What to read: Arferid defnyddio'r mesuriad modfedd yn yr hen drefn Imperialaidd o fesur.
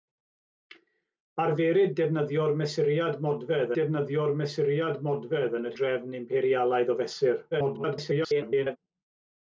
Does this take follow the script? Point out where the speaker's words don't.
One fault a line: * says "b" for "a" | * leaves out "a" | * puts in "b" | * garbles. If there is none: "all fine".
* puts in "defnyddio'r mesuriad modfedd"
* leaves out "hen"
* garbles